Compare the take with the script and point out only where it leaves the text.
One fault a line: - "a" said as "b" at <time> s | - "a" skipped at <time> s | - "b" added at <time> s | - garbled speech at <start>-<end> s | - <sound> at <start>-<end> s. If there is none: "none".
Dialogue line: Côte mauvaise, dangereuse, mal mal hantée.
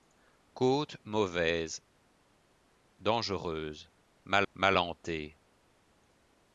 none